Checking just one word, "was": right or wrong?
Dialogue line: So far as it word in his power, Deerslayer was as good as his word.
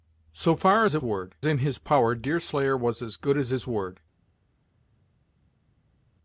right